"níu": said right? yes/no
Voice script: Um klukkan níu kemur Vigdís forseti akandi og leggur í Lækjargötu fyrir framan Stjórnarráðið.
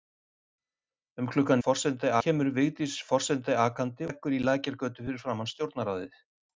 no